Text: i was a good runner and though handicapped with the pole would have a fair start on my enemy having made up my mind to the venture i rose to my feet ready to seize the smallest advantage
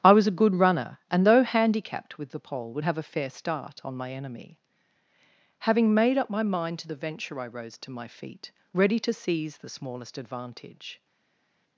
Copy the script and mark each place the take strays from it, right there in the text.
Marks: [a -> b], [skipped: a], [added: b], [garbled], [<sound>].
i was a good runner and though handicapped with the pole would have a fair start on my enemy having made up my mind to the venture i rose to my feet ready to seize the smallest advantage